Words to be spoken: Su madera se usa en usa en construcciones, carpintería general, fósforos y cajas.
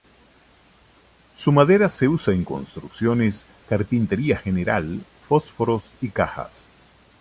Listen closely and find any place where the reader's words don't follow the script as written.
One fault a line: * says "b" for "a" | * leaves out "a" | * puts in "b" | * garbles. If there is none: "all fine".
* leaves out "usa en"